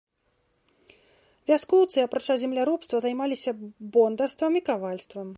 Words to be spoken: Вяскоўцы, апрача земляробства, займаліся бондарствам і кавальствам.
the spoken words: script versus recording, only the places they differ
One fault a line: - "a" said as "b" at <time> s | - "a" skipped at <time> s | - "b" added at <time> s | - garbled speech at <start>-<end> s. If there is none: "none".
none